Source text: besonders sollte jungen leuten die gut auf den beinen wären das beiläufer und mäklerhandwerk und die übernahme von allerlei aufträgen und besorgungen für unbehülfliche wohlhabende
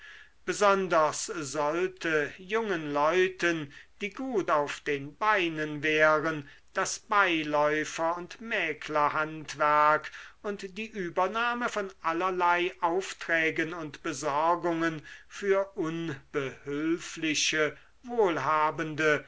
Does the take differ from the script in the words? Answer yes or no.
no